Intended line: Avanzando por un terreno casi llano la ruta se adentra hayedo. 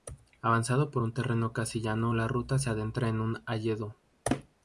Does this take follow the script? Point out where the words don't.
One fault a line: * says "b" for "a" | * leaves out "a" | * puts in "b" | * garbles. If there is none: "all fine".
* puts in "en un"